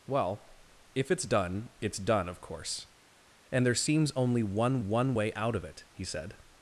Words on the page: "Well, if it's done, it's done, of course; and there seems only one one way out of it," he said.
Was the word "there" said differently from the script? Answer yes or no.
no